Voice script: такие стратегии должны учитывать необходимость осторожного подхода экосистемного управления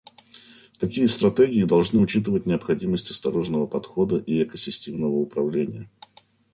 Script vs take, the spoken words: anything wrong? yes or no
yes